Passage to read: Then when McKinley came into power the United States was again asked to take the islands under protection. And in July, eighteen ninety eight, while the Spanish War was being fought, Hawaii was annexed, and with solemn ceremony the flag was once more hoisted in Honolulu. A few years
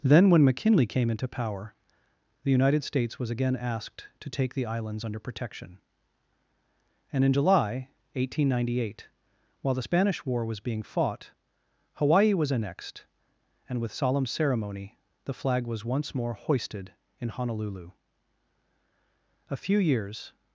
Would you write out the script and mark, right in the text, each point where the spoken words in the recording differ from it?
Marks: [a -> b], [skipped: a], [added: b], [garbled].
Then when McKinley came into power the United States was again asked to take the islands under protection. And in July, eighteen ninety eight, while the Spanish War was being fought, Hawaii was annexed, and with solemn ceremony the flag was once more hoisted in Honolulu. A few years